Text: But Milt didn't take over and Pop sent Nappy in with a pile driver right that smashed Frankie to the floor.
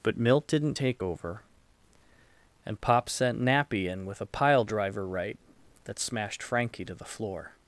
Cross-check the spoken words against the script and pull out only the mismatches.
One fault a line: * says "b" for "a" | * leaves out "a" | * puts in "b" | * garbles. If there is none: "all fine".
all fine